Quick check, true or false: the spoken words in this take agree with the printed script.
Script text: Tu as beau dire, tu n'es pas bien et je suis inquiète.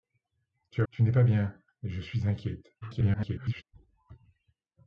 false